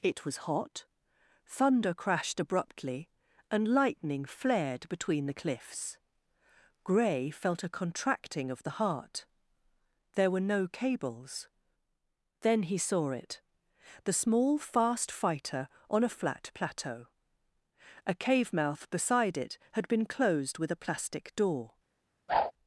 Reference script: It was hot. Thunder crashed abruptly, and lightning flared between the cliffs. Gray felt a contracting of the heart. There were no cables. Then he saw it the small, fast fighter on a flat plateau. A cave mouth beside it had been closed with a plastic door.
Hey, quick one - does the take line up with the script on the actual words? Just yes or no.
yes